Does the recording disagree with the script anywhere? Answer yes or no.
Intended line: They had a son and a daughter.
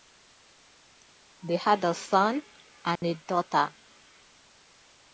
no